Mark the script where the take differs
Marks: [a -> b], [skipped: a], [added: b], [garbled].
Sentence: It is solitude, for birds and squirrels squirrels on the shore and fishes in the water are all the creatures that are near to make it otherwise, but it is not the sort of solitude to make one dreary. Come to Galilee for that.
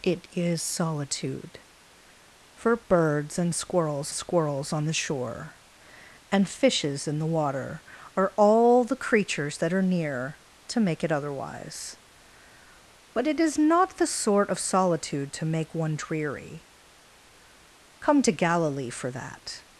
It is solitude, for birds and squirrels squirrels on the shore and fishes in the water are all the creatures that are near to make it otherwise, but it is not the sort of solitude to make one dreary. Come to Galilee for that.